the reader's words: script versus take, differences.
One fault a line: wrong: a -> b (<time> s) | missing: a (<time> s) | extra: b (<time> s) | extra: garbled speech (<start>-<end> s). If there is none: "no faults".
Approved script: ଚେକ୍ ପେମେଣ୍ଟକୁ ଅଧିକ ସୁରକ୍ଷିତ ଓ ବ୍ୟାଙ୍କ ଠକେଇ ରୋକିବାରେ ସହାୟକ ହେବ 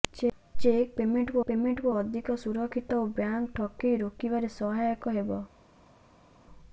extra: ପେମେଣ୍ଟକୁ (1.4 s)